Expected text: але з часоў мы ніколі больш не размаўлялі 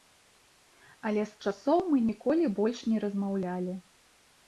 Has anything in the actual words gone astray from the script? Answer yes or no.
no